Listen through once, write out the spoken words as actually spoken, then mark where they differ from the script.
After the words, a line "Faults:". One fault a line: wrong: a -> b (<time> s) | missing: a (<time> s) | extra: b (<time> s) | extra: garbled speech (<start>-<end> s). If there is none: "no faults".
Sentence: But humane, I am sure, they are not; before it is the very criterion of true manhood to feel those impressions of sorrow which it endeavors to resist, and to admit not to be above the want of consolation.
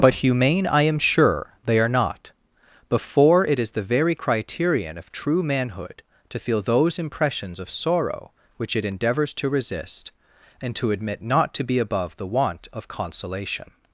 But humane, I am sure, they are not; before it is the very criterion of true manhood to feel those impressions of sorrow which it endeavors to resist, and to admit not to be above the want of consolation.
Faults:
no faults